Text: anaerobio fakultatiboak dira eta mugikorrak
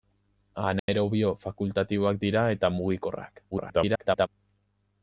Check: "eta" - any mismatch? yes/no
no